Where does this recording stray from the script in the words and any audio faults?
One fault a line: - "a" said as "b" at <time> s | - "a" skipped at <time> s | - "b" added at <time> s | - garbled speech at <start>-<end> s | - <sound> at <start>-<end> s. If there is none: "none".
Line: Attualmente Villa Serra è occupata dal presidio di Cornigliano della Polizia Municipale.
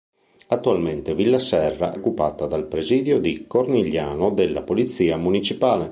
- "è" skipped at 1.9 s